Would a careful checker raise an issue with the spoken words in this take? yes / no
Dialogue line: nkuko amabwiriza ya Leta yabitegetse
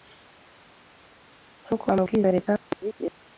no